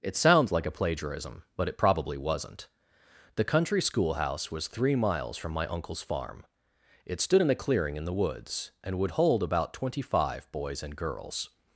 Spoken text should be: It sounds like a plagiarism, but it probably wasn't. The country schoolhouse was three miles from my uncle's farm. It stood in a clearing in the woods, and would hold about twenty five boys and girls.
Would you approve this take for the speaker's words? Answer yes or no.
yes